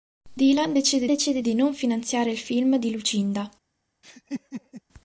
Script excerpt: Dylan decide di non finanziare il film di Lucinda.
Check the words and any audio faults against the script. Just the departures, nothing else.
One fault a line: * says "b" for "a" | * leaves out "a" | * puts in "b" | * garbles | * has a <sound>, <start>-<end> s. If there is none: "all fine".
* puts in "decide"
* has a laugh, 4.0-4.8 s